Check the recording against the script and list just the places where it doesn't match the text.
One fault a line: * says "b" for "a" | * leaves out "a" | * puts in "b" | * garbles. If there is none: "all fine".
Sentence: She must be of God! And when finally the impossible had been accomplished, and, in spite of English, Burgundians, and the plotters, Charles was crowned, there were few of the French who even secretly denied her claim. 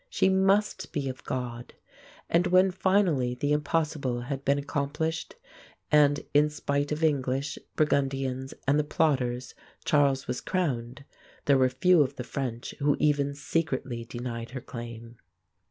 all fine